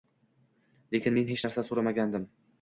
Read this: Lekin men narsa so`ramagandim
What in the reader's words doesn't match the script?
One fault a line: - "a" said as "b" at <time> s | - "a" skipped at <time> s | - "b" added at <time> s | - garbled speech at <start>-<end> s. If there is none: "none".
- "hech" added at 1.3 s